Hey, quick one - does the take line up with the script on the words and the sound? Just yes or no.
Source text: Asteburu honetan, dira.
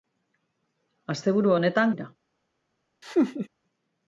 no